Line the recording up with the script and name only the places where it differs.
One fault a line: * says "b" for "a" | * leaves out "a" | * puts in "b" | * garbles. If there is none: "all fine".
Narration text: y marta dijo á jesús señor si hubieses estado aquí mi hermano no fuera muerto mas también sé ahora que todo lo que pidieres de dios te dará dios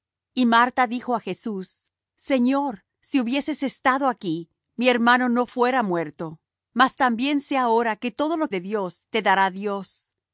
* leaves out "que pidieres"